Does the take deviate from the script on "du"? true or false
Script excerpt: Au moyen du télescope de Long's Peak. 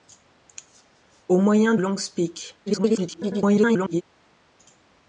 true